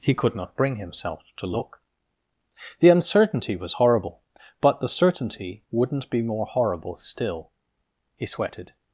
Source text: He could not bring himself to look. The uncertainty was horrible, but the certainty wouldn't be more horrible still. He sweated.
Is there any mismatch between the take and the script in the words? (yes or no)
no